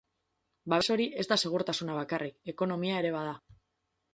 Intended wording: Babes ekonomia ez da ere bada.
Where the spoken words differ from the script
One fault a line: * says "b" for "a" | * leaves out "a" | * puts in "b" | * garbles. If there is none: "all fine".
* says "hori" for "ekonomia"
* puts in "segurtasuna bakarrik ekonomia"